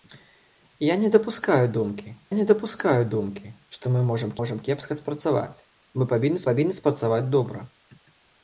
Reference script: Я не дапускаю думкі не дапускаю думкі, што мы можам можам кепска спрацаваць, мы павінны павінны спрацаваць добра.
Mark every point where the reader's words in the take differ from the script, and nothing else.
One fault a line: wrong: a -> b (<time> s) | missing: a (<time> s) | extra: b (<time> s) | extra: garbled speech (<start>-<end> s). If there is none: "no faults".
no faults